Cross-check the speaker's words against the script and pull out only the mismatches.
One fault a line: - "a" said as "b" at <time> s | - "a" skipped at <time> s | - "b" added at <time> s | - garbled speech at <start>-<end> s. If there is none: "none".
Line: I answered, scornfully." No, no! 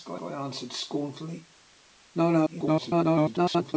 - "I" added at 0.2 s
- garbled speech at 2.5-3.7 s